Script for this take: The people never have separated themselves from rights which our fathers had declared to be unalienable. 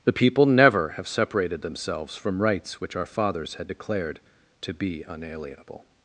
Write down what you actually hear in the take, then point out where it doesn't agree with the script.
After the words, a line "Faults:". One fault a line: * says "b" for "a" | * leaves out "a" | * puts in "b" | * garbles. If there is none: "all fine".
The people never have separated themselves from rights which our fathers had declared to be unalienable.
Faults:
all fine